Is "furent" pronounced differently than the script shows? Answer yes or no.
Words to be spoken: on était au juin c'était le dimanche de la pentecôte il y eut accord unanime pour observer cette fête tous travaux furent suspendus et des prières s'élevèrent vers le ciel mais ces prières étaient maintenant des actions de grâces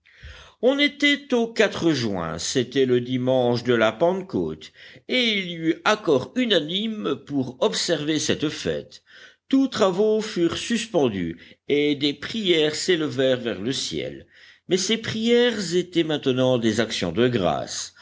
no